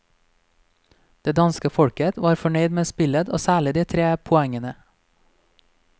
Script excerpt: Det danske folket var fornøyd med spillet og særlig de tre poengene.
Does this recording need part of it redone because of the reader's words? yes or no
no